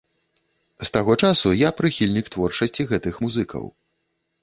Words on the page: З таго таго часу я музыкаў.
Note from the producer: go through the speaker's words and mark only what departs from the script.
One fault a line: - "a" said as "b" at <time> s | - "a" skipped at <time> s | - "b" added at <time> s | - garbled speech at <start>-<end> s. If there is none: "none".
- "таго" skipped at 1.2 s
- "прыхільнік творчасці гэтых" added at 1.8 s